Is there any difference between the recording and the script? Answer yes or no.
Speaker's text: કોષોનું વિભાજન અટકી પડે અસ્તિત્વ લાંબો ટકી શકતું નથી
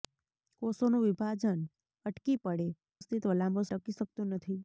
no